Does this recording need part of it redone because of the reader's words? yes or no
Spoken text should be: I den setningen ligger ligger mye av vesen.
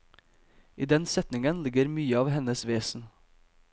yes